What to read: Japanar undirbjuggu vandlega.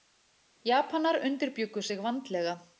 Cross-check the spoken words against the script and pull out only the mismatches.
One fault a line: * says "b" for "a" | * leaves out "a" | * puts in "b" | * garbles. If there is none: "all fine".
* puts in "sig"